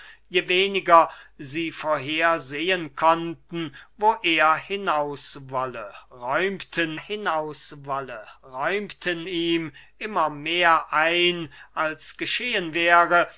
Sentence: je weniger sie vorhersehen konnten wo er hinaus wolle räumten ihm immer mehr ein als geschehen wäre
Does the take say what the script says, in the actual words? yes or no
no